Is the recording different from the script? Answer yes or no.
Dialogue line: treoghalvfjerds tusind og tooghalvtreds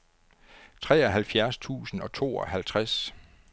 no